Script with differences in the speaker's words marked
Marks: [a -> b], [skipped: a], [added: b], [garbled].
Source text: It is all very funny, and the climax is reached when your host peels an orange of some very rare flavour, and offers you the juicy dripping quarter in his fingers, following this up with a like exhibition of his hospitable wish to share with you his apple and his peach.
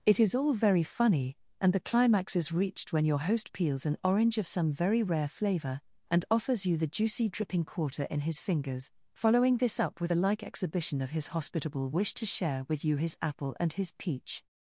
It is all very funny, and the climax is reached when your host peels an orange of some very rare flavour, and offers you the juicy dripping quarter in his fingers, following this up with a like exhibition of his hospitable wish to share with you his apple and his peach.